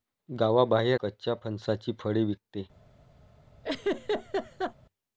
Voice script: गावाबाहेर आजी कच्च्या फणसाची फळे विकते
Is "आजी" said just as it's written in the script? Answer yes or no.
no